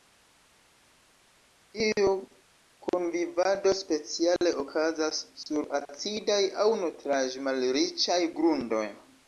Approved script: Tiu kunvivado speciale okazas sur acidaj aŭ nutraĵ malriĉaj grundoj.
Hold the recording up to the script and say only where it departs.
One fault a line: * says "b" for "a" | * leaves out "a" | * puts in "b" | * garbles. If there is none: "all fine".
all fine